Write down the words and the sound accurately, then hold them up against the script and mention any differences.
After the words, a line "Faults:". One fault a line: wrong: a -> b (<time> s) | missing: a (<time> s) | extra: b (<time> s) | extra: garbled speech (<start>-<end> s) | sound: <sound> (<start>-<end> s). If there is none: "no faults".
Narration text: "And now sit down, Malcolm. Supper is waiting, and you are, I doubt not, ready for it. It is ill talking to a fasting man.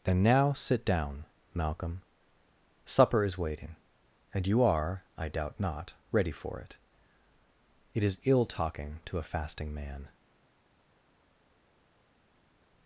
"Then now sit down, Malcolm. Supper is waiting, and you are, I doubt not, ready for it. It is ill talking to a fasting man.
Faults:
wrong: And -> Then (0.0 s)